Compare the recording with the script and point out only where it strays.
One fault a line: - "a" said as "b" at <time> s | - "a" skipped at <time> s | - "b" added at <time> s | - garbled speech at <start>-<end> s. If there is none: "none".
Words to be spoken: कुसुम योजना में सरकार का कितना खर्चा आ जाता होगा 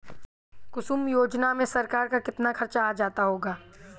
none